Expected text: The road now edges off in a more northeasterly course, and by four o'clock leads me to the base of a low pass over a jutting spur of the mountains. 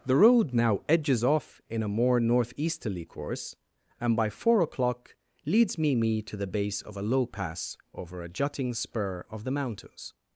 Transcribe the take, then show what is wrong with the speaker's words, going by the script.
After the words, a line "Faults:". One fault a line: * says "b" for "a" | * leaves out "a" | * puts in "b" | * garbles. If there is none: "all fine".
The road now edges off in a more northeasterly course, and by four o'clock leads me me to the base of a low pass over a jutting spur of the mountains.
Faults:
* puts in "me"